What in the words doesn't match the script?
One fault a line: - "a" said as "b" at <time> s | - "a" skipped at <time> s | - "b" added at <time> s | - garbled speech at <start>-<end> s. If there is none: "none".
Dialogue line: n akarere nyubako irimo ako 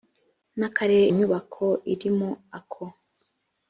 none